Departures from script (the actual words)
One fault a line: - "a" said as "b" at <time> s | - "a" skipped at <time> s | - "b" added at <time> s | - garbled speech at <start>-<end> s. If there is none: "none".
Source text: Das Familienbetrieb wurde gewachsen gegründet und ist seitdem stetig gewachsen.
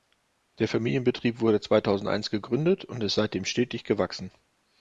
- "Das" said as "Der" at 0.6 s
- "gewachsen" said as "zweitausendeins" at 1.6 s